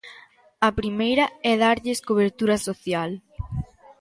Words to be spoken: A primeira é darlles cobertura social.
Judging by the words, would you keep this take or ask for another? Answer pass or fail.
pass